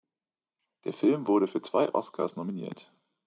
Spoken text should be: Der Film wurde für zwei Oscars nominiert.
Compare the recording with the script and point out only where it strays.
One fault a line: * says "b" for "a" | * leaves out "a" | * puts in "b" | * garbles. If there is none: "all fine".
all fine